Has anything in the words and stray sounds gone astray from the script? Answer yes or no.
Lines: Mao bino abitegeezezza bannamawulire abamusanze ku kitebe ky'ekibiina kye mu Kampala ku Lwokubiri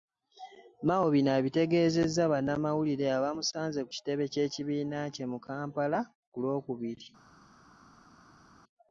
no